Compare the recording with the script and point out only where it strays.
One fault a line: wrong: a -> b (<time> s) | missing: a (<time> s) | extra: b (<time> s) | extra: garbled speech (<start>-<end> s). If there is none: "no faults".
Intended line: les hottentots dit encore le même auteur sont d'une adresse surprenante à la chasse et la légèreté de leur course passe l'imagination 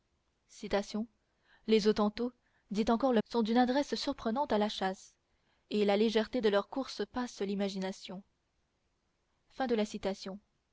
missing: même auteur (3.2 s)